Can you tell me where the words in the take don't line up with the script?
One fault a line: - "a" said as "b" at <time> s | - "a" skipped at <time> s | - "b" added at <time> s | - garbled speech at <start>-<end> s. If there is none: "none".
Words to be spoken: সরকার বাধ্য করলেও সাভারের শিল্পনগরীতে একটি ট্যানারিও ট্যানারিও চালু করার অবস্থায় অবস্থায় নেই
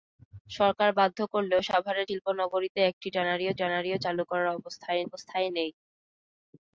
none